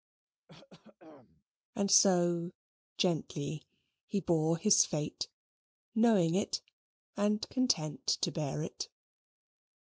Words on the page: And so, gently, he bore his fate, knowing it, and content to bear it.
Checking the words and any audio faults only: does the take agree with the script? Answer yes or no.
no